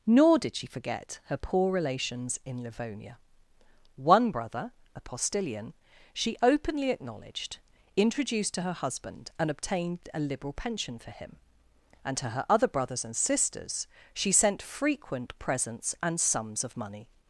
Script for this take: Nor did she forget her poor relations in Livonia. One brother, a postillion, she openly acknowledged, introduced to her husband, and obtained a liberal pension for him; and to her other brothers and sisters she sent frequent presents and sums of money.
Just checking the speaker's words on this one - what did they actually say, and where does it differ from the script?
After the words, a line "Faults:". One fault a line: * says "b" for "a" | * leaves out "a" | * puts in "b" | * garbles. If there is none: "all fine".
Nor did she forget her poor relations in Livonia. One brother, a postillion, she openly acknowledged, introduced to her husband, and obtained a liberal pension for him; and to her other brothers and sisters she sent frequent presents and sums of money.
Faults:
all fine